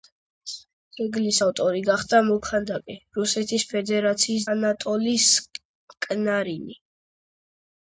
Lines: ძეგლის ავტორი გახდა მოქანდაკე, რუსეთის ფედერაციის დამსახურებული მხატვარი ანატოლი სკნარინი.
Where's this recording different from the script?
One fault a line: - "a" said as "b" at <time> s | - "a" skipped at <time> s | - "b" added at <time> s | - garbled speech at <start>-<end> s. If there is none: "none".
- "დამსახურებული მხატვარი" skipped at 4.5 s